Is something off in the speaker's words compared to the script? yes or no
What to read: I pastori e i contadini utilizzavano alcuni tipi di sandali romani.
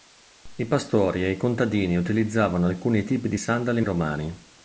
no